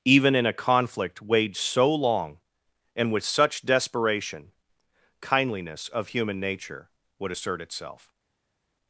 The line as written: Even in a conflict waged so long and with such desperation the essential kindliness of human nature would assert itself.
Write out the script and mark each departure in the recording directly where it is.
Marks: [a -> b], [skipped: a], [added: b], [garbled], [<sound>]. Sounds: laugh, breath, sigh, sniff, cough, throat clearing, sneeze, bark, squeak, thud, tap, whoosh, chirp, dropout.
Even in a conflict waged so long and with such desperation [skipped: the essential] kindliness of human nature would assert itself.